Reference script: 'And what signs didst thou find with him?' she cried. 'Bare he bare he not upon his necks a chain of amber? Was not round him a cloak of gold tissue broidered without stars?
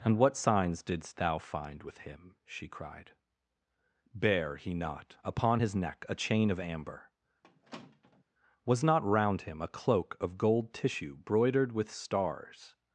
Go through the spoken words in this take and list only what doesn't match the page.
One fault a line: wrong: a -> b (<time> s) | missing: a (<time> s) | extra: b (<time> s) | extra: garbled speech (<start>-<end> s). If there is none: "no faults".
missing: bare he (4.7 s)
wrong: necks -> neck (5.7 s)
wrong: without -> with (11.7 s)